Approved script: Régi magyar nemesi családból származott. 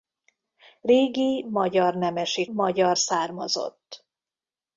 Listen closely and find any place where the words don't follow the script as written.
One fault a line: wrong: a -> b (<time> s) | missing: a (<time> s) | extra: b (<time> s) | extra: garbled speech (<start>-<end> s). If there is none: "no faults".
wrong: családból -> magyar (2.5 s)